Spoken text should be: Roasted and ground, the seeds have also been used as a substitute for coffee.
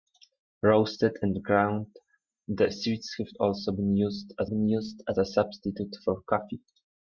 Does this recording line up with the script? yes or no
no